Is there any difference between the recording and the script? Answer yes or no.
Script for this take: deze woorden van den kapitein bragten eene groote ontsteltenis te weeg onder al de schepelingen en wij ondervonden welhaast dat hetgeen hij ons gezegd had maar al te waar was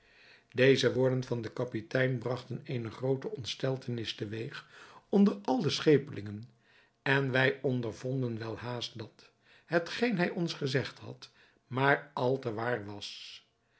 no